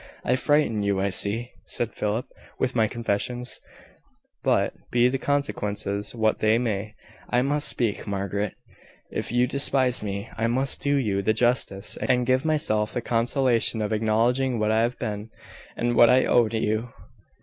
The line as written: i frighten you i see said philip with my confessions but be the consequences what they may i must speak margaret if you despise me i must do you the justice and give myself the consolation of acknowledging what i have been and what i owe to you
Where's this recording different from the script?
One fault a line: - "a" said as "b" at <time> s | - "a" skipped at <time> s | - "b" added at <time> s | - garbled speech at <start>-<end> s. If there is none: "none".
none